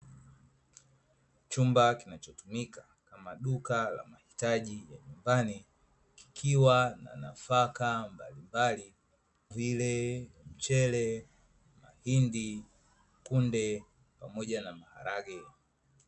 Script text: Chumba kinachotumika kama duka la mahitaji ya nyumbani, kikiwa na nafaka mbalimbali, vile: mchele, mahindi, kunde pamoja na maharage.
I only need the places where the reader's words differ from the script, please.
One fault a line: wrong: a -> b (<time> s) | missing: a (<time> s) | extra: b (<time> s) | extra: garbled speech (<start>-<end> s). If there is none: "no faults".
no faults